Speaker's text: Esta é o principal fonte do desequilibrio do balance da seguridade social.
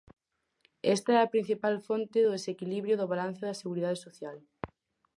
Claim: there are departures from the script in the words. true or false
true